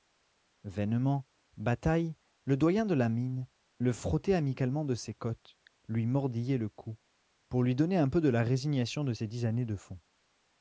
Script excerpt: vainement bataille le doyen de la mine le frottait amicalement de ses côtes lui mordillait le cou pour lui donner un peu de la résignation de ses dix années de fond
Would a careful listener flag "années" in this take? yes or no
no